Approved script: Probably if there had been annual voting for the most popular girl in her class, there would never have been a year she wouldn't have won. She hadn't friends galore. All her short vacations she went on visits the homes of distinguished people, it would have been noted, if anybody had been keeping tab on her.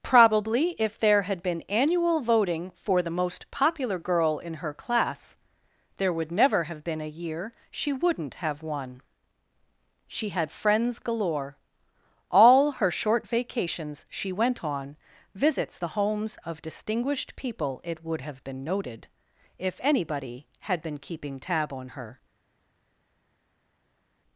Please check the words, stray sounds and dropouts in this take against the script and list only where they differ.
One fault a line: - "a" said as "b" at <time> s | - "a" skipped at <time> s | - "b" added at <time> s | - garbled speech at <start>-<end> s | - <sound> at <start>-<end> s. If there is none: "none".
- "hadn't" said as "had" at 10.3 s